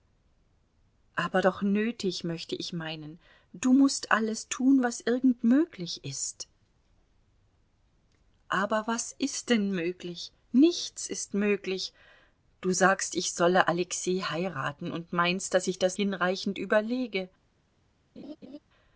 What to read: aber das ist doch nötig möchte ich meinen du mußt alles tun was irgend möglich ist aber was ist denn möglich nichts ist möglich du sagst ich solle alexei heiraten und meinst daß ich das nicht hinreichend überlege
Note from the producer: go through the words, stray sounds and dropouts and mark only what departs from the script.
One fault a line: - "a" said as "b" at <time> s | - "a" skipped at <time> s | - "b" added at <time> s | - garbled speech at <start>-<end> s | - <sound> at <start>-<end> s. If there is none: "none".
- "das ist" skipped at 1.4 s
- "nicht" skipped at 16.0 s
- laugh at 18.2-18.6 s